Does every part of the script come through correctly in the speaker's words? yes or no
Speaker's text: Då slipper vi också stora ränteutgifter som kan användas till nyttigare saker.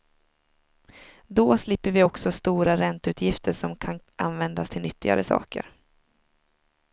yes